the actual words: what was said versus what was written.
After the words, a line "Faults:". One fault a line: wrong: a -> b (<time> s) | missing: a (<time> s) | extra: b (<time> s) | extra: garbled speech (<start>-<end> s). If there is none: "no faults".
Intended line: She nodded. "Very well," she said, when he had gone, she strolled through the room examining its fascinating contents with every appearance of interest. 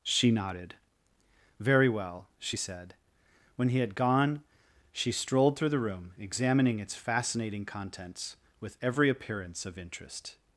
She nodded. "Very well," she said, when he had gone, she strolled through the room examining its fascinating contents with every appearance of interest.
Faults:
no faults